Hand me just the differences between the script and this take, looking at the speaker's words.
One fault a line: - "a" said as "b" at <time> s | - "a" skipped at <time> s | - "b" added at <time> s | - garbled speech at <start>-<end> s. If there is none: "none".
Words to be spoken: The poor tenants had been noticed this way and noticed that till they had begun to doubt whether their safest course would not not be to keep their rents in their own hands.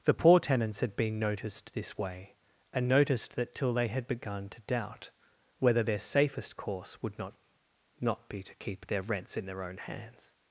none